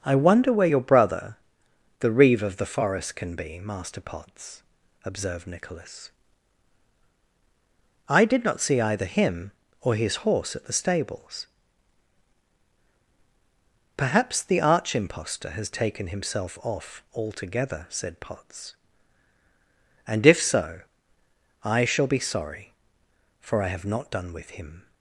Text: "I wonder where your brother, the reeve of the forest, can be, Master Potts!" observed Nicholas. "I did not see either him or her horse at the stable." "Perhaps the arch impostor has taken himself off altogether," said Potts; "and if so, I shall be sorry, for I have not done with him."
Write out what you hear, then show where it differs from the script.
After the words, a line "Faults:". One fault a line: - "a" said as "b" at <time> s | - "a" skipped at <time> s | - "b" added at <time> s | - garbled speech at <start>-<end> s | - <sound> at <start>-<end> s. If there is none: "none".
"I wonder where your brother, the reeve of the forest, can be, Master Potts!" observed Nicholas. "I did not see either him or his horse at the stables." "Perhaps the arch impostor has taken himself off altogether," said Potts; "and if so, I shall be sorry, for I have not done with him."
Faults:
- "her" said as "his" at 10.0 s
- "stable" said as "stables" at 10.7 s